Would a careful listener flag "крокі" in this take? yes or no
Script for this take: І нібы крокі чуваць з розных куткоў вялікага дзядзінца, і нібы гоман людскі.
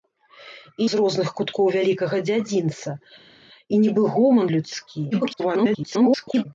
yes